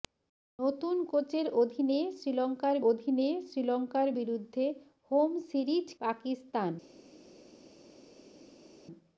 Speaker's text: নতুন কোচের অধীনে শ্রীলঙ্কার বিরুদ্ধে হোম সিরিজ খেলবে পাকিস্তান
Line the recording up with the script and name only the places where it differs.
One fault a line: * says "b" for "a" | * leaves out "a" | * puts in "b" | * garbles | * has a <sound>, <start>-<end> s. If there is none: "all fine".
* puts in "অধীনে শ্রীলঙ্কার"
* leaves out "খেলবে"